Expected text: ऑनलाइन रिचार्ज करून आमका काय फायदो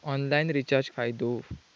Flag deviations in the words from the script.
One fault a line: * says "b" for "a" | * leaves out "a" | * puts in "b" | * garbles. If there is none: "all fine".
* leaves out "करून आमका काय"